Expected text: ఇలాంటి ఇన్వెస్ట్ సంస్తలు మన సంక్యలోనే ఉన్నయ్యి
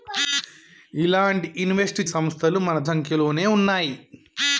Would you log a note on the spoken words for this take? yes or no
no